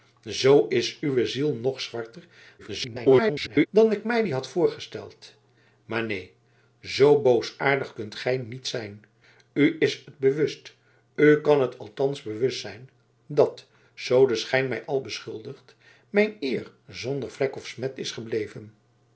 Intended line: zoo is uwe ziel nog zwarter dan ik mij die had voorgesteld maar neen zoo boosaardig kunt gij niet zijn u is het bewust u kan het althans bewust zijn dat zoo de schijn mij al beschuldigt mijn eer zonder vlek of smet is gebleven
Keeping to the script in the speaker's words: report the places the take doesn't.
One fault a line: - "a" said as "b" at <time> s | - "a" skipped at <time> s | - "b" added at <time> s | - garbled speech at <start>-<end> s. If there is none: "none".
- garbled speech at 2.6-3.7 s